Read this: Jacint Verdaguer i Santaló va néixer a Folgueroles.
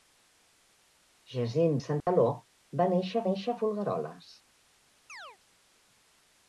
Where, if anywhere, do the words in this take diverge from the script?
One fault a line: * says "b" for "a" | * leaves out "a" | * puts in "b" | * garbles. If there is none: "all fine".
* leaves out "Verdaguer"
* puts in "néixer"